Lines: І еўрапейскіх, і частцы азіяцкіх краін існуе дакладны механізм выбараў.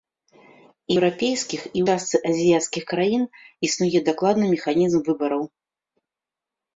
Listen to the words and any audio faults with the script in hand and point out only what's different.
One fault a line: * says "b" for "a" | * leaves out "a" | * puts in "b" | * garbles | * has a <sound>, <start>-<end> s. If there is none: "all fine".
all fine